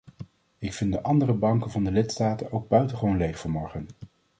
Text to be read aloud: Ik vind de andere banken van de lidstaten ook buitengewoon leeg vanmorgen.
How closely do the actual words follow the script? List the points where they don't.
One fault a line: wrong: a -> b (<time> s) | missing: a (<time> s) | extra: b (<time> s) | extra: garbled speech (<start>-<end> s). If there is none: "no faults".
no faults